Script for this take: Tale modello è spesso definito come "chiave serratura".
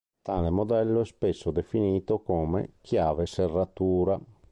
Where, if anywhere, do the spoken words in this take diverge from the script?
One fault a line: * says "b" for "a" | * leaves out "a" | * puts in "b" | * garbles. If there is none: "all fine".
all fine